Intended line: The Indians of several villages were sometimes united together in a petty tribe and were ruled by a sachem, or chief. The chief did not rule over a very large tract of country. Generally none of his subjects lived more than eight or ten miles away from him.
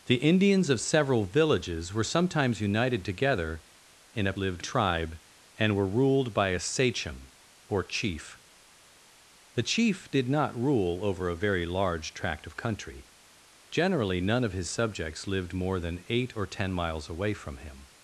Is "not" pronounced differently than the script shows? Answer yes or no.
no